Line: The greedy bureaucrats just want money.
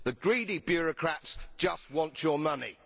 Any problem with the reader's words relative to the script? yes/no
yes